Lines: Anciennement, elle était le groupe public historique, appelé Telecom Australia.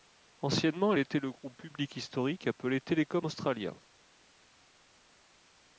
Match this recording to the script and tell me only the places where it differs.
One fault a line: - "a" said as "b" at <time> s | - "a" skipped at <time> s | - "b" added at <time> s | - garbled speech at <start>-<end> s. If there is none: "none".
none